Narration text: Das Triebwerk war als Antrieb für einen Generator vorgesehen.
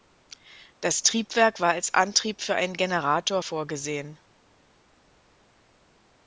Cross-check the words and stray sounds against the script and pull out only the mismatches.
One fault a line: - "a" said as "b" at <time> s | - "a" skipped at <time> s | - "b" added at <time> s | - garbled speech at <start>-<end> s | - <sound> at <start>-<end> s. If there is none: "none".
none